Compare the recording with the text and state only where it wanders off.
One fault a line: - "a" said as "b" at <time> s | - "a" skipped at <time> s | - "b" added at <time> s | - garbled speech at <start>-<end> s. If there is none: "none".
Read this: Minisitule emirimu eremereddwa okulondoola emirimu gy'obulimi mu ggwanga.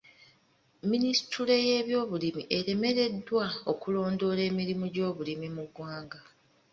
- "emirimu" said as "y'ebyobulimi" at 1.7 s